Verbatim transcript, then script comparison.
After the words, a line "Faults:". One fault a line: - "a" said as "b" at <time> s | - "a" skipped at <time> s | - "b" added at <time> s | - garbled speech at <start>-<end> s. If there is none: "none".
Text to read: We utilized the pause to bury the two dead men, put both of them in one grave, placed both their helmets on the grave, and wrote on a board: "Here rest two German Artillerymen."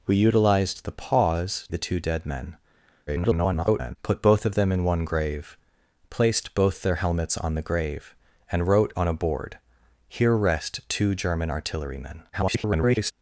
We utilized the pause the two dead men, [garbled] put both of them in one grave, placed both their helmets on the grave, and wrote on a board: "Here rest two German Artillerymen." [garbled]
Faults:
- "to bury" skipped at 1.7 s
- garbled speech at 3.1-4.0 s
- garbled speech at 12.3-13.1 s